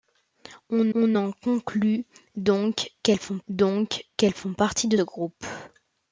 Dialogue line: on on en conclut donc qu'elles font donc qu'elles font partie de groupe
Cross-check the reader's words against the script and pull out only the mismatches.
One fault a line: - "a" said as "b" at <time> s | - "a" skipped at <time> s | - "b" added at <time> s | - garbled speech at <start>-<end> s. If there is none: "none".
none